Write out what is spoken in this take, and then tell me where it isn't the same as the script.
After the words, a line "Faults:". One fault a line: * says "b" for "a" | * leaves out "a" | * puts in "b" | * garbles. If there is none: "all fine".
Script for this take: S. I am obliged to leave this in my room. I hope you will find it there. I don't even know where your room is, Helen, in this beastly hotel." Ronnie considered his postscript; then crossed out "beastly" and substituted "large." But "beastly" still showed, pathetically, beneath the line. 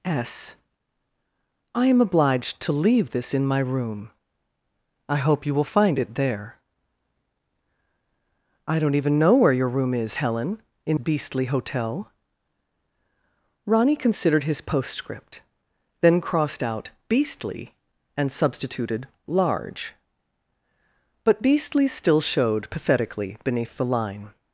S. I am obliged to leave this in my room. I hope you will find it there. I don't even know where your room is, Helen, in beastly hotel." Ronnie considered his postscript; then crossed out "beastly" and substituted "large." But "beastly" still showed, pathetically, beneath the line.
Faults:
* leaves out "this"